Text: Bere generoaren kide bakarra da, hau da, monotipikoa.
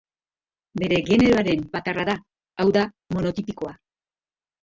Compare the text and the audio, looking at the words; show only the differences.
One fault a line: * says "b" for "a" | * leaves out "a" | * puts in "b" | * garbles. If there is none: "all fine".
* leaves out "kide"